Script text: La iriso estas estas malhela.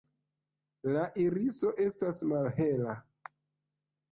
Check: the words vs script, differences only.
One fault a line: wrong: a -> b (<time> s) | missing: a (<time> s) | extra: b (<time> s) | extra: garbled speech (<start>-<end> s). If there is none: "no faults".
missing: estas (2.2 s)